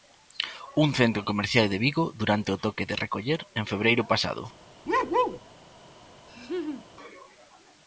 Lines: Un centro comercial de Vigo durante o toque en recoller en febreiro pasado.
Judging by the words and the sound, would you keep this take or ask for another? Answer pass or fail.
fail